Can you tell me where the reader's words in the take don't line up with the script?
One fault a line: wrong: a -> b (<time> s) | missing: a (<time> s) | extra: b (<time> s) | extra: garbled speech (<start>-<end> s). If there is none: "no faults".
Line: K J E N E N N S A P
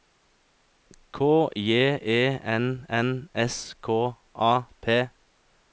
missing: E (2.9 s)
wrong: N S -> S K (3.3 s)